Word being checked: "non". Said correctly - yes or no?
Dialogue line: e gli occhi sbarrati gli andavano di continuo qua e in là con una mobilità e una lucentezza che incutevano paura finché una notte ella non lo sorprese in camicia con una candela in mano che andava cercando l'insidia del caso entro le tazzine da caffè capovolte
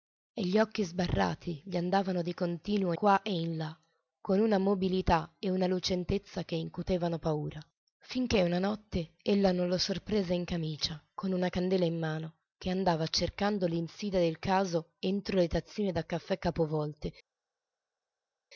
yes